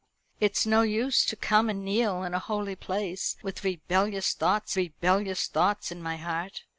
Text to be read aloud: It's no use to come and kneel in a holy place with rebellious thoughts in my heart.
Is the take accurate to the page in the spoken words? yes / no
no